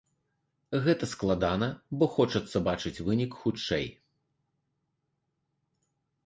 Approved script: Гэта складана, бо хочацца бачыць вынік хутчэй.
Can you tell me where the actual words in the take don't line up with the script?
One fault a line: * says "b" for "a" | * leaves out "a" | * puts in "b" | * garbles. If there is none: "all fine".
all fine